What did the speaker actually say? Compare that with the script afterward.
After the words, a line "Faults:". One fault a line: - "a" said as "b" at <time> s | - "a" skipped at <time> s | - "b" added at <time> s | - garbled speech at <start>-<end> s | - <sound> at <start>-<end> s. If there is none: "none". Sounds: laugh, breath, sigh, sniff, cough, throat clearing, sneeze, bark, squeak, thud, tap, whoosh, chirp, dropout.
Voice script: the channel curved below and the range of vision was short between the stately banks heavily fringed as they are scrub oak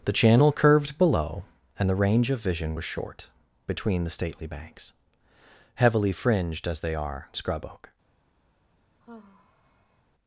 the channel curved below and the range of vision was short between the stately banks heavily fringed as they are scrub oak
Faults:
- sigh at 9.0-10.0 s